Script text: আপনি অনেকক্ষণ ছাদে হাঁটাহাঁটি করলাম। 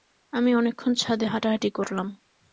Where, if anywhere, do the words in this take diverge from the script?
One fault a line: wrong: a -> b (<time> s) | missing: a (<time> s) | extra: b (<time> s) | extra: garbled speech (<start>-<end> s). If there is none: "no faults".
wrong: আপনি -> আমি (0.3 s)